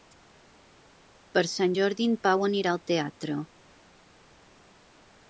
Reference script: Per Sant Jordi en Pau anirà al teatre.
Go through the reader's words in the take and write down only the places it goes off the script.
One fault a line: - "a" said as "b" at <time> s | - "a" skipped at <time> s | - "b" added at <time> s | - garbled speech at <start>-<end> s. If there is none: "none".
none